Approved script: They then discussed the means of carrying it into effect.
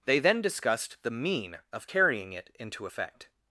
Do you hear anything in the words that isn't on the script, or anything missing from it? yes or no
yes